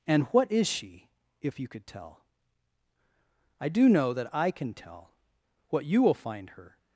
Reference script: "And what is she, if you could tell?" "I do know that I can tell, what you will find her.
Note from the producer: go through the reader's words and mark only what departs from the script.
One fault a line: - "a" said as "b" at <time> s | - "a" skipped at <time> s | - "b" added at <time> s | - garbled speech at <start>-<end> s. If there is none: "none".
none